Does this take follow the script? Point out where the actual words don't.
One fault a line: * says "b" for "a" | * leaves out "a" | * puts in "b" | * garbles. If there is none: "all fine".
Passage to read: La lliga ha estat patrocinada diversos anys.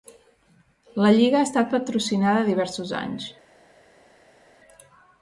all fine